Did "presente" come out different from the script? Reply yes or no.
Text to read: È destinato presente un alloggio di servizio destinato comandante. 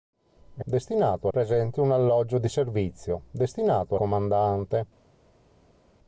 no